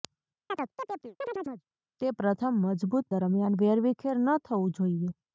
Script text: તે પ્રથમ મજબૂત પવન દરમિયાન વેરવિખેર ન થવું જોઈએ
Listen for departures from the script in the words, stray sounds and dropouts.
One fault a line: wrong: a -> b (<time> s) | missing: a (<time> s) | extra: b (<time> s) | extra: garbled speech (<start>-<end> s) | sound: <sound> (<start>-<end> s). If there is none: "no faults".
sound: chirp (0.5-1.6 s)
missing: પવન (3.1 s)